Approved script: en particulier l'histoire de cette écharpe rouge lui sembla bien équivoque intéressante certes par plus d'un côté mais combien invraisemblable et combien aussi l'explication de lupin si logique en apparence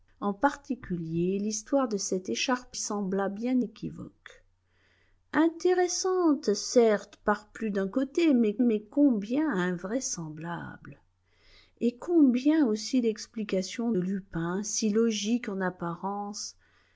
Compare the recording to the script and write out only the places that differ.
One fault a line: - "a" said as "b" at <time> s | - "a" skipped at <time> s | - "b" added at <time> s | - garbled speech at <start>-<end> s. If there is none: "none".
- "rouge lui" skipped at 2.8 s
- "mais" added at 8.6 s
- "de" skipped at 13.9 s